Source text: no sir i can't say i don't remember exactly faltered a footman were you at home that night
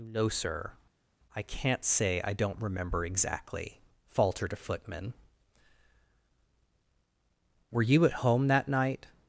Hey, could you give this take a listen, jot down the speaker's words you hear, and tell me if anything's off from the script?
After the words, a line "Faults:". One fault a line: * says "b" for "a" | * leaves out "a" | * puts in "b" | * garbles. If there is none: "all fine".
no sir i can't say i don't remember exactly faltered a footman were you at home that night
Faults:
all fine